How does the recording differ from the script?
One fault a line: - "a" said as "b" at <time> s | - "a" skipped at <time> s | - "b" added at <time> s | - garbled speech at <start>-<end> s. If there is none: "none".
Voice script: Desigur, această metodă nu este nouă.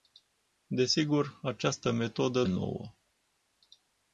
- "nu este" skipped at 2.4 s